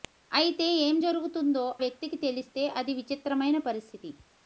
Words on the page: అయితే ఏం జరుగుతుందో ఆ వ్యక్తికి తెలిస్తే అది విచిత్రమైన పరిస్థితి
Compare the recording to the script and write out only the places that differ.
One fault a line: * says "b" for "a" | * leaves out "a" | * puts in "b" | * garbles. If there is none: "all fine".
* leaves out "ఆ"